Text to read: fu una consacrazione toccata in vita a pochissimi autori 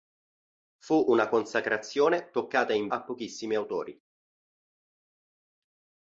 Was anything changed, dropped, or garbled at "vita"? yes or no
yes